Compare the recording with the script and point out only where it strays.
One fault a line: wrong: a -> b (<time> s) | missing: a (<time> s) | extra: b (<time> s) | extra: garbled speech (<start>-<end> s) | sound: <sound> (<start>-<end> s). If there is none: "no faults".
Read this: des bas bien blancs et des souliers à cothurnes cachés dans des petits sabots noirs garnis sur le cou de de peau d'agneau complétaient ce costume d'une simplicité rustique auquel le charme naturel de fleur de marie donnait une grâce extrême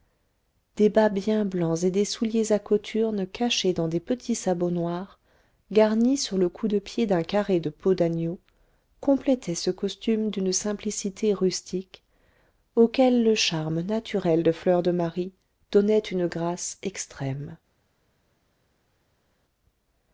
extra: pied d'un carré (6.8 s)